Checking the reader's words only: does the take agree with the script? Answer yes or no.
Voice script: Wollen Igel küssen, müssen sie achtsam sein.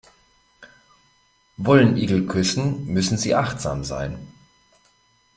yes